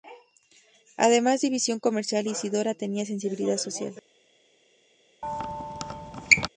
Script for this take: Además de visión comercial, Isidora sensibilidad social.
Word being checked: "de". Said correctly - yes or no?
yes